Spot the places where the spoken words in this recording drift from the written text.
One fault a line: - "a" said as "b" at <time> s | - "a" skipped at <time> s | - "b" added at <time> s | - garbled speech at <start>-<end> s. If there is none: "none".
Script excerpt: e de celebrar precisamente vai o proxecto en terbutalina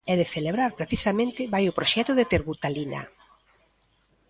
- "en" said as "de" at 2.1 s